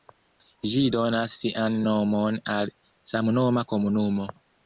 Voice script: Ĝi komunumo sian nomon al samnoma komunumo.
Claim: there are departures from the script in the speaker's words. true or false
true